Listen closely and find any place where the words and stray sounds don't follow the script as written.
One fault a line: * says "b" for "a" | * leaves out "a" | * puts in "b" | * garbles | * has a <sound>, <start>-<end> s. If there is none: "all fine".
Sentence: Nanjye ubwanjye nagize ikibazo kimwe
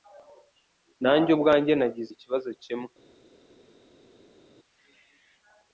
all fine